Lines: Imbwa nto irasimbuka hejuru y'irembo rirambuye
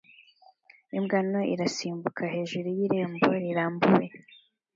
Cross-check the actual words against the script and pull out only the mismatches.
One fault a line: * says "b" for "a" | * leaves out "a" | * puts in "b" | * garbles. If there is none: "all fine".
all fine